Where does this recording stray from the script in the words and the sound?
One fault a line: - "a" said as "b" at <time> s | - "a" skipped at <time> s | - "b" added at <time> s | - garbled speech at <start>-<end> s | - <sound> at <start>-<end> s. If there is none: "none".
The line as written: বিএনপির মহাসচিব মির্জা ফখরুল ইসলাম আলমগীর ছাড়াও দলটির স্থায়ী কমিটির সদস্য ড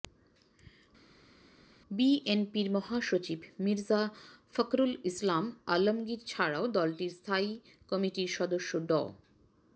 none